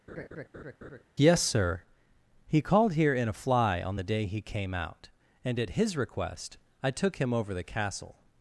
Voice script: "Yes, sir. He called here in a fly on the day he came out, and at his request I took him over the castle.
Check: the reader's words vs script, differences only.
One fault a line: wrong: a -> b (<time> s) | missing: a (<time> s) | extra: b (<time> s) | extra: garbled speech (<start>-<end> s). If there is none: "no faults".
no faults